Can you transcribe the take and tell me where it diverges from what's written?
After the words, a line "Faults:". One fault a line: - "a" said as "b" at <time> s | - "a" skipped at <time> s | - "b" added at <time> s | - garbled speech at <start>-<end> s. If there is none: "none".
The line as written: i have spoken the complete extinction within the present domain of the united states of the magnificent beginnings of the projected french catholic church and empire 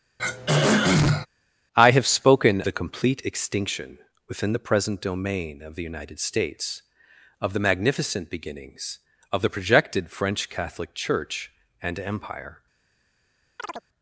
i have spoken the complete extinction within the present domain of the united states of the magnificent beginnings of the projected french catholic church and empire
Faults:
none